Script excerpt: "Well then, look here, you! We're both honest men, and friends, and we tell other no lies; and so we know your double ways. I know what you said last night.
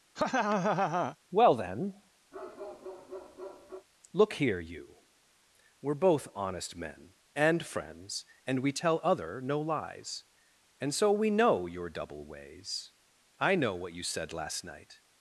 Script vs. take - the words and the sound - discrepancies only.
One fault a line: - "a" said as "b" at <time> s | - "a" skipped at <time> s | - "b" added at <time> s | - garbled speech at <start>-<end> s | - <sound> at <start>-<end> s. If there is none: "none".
- laugh at 0.2-1.2 s
- bark at 2.3-3.9 s